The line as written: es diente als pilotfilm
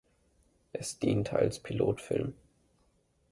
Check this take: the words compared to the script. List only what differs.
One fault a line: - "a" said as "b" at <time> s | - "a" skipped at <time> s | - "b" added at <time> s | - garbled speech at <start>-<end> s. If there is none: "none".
none